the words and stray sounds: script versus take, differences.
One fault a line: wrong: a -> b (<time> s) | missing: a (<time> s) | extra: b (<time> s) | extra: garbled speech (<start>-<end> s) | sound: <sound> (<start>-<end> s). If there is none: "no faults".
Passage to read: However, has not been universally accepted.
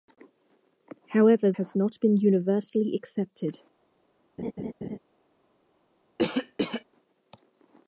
sound: laugh (4.4-5.0 s)
sound: cough (6.2-6.8 s)